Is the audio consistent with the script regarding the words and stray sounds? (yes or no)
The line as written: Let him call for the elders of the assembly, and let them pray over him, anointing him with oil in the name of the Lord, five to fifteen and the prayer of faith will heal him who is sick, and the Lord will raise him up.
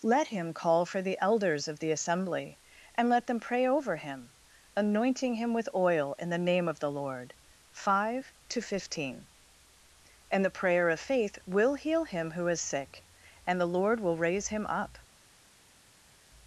yes